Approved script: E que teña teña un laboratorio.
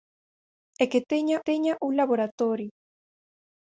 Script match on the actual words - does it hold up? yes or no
yes